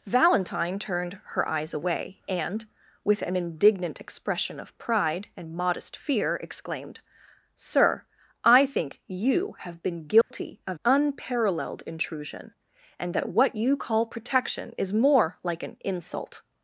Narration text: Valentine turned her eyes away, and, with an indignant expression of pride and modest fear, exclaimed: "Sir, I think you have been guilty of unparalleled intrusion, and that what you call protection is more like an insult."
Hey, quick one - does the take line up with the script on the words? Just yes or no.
yes